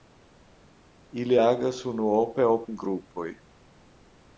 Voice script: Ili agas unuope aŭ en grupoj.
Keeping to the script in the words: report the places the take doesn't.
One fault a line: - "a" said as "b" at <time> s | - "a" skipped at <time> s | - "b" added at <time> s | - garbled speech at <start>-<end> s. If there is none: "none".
none